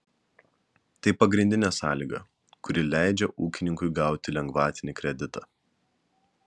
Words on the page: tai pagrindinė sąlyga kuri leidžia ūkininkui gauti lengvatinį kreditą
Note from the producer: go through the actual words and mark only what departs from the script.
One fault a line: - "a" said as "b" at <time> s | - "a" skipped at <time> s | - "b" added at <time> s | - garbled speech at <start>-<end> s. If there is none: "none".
none